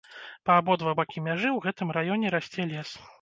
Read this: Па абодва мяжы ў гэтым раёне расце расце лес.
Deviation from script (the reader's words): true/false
true